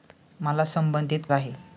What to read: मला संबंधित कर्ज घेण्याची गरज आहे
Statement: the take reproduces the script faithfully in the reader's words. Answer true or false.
false